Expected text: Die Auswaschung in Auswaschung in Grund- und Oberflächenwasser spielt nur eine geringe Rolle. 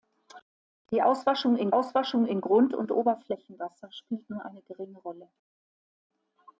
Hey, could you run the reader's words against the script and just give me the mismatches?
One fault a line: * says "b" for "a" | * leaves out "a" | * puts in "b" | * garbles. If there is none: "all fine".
all fine